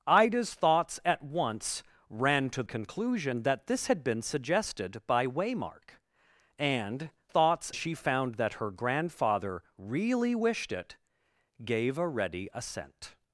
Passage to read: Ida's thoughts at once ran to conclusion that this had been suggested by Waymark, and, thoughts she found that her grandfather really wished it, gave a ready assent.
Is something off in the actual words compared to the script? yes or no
no